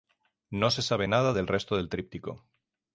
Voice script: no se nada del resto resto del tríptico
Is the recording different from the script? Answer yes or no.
yes